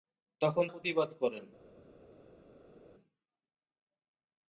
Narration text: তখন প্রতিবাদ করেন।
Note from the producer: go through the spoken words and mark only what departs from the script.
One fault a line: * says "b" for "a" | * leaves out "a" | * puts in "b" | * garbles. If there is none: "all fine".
all fine